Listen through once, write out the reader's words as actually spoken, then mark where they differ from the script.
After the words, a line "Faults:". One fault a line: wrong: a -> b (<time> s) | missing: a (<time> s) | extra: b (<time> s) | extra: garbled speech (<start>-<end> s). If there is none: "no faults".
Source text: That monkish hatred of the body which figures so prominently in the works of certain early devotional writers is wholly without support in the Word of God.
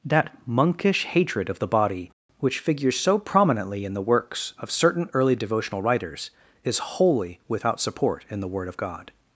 That monkish hatred of the body which figures so prominently in the works of certain early devotional writers is wholly without support in the Word of God.
Faults:
no faults